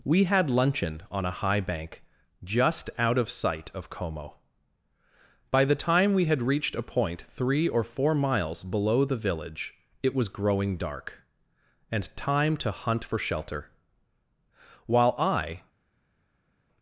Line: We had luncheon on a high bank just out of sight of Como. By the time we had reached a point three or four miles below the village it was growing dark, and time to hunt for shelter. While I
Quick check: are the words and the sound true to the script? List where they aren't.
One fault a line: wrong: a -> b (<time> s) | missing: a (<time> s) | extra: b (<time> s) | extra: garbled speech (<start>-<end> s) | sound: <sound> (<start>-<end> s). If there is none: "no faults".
no faults